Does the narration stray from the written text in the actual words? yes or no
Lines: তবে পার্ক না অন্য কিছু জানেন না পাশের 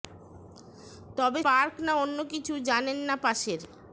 no